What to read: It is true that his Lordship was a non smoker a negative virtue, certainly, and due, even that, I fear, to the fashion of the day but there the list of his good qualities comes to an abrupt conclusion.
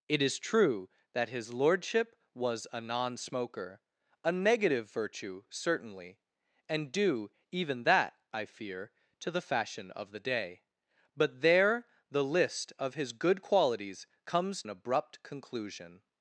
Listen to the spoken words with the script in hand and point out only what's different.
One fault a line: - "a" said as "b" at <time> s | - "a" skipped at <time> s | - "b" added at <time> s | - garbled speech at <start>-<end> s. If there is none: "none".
- "to" skipped at 14.6 s